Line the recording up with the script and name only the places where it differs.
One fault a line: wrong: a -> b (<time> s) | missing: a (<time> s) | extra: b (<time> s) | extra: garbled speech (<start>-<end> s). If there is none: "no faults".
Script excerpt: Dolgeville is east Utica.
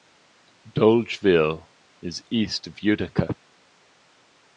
extra: of (2.6 s)